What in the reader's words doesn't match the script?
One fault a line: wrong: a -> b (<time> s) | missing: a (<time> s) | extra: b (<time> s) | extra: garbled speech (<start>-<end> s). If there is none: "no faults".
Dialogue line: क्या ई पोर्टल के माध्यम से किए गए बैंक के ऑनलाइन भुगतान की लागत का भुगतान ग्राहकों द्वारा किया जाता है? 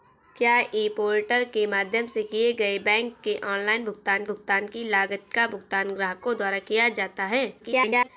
extra: भुगतान (4.3 s)
extra: garbled speech (7.6-8.1 s)